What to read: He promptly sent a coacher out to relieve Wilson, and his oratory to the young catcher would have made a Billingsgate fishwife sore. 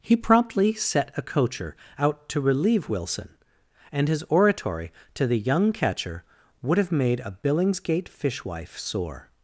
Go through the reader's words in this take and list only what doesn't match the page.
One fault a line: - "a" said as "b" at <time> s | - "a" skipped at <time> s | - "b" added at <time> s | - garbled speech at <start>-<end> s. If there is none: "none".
- "sent" said as "set" at 0.7 s